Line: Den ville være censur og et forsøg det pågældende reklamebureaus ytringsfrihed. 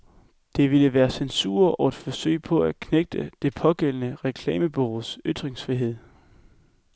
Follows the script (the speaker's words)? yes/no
no